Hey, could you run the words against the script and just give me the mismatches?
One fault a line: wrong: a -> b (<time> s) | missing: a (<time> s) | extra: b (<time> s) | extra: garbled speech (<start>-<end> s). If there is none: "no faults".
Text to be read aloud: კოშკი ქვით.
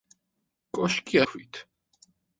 no faults